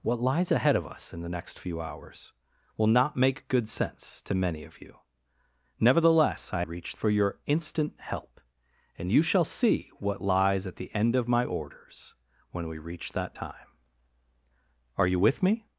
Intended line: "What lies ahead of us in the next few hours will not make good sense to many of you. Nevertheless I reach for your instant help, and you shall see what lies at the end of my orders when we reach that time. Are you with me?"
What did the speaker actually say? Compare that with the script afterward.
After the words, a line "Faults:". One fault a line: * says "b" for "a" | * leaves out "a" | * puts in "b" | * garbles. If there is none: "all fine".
"What lies ahead of us in the next few hours will not make good sense to many of you. Nevertheless I reach for your instant help, and you shall see what lies at the end of my orders when we reach that time. Are you with me?"
Faults:
all fine